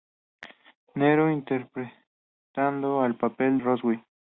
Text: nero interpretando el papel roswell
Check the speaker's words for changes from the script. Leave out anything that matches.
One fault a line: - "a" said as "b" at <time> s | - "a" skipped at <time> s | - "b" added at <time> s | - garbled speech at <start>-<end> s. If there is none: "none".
none